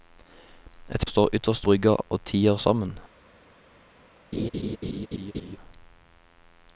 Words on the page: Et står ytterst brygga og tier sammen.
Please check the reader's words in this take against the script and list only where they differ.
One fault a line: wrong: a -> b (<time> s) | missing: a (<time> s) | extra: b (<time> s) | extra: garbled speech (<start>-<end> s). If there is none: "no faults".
no faults